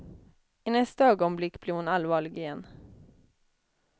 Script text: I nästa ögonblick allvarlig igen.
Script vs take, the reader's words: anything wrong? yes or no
yes